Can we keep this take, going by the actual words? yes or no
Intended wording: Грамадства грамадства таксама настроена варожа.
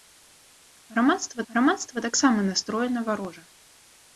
yes